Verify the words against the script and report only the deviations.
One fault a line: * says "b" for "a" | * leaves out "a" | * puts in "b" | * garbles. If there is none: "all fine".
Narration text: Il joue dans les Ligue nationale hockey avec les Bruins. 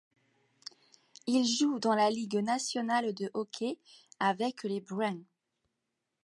* says "la" for "les"
* puts in "de"